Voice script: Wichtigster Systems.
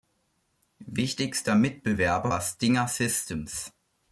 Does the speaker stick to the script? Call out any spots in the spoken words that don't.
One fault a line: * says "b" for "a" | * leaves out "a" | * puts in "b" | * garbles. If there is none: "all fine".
* puts in "Mitbewerber war Stinger"